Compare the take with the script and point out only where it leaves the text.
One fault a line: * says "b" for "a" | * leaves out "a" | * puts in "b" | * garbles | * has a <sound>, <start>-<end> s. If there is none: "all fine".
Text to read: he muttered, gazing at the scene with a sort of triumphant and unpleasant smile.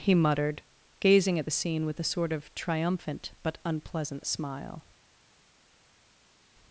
* says "but" for "and"